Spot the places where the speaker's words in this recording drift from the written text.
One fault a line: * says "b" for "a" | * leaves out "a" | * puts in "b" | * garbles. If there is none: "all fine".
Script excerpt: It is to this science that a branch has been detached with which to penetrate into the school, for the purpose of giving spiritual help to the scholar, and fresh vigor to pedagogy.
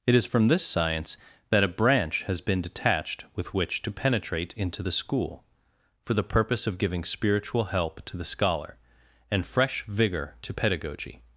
* says "from" for "to"